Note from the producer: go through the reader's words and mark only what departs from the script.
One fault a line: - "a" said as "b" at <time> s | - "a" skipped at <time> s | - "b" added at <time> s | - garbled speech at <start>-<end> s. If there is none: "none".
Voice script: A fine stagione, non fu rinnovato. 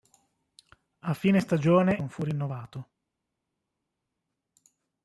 none